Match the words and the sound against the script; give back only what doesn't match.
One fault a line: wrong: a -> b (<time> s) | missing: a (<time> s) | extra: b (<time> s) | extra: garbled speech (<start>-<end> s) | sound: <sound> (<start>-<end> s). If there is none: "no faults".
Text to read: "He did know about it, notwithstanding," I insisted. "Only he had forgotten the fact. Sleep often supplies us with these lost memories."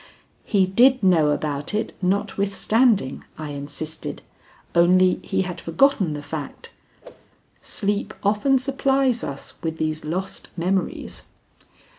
sound: whoosh (7.0-7.3 s)